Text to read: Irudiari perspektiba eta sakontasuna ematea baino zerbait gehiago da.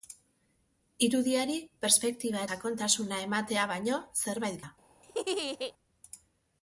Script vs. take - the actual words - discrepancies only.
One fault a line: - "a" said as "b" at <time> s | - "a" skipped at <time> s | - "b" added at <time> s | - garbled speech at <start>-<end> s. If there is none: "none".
- "eta" skipped at 2.4 s
- "gehiago" skipped at 4.6 s